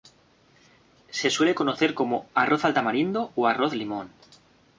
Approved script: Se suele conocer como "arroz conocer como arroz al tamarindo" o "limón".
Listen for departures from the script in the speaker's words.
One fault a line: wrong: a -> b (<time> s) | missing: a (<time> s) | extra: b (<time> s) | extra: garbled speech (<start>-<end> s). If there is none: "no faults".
missing: conocer como arroz (2.6 s)
extra: arroz (3.5 s)